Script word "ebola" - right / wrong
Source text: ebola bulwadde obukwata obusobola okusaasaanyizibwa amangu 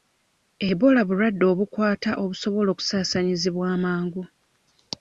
right